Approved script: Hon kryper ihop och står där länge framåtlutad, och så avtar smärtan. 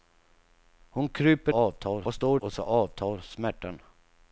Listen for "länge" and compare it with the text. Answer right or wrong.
wrong